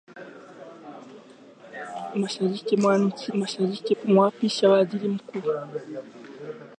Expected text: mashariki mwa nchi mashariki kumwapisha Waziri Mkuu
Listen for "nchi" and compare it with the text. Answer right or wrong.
right